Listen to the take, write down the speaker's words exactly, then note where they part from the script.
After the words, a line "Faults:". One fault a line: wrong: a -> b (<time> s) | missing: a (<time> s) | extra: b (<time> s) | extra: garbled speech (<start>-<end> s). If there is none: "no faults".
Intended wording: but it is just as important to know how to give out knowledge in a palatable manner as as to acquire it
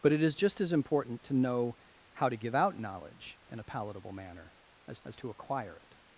but it is just as important to know how to give out knowledge in a palatable manner as as to acquire it
Faults:
no faults